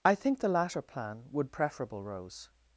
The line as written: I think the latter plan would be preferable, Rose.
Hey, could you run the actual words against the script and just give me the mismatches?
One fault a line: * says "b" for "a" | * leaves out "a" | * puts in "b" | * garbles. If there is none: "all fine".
* leaves out "be"